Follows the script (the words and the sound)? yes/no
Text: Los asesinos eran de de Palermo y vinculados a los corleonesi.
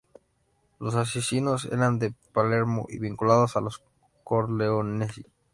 no